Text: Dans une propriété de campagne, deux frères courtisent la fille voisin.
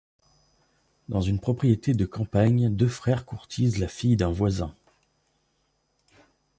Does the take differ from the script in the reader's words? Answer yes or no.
yes